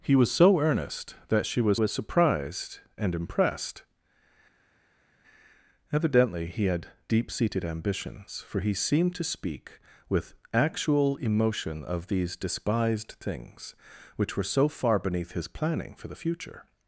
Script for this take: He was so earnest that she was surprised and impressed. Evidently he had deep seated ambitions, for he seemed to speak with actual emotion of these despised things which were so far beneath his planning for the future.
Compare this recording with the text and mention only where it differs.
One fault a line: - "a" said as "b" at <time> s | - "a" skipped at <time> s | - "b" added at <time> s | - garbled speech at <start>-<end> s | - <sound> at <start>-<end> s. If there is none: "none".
- "was" added at 1.7 s